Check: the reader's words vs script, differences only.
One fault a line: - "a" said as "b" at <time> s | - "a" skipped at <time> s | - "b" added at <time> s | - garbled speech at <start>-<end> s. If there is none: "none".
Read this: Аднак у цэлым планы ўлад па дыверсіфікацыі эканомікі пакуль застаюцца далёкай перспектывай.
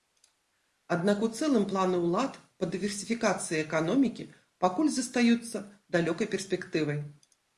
none